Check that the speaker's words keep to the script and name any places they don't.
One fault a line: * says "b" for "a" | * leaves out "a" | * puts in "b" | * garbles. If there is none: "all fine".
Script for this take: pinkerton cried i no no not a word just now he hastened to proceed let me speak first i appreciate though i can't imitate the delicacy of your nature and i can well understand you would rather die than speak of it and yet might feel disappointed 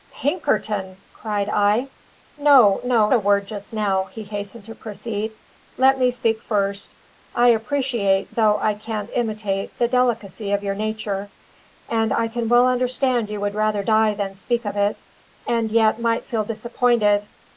* leaves out "not"